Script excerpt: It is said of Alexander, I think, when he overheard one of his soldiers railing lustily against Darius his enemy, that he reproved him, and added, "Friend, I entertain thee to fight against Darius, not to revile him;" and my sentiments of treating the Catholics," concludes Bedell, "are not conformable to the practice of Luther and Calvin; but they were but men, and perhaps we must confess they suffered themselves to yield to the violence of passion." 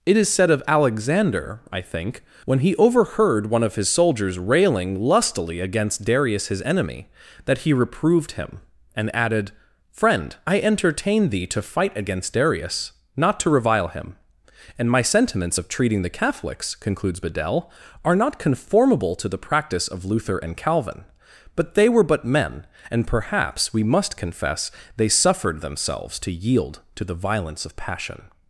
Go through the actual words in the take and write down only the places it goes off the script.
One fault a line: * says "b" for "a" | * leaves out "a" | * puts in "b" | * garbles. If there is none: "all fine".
all fine